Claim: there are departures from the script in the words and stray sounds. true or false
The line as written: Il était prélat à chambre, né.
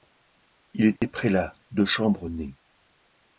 true